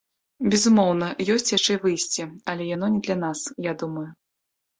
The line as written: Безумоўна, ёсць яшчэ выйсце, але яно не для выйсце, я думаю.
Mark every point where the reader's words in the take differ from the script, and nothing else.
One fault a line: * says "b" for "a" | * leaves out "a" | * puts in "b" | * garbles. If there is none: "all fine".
* says "нас" for "выйсце"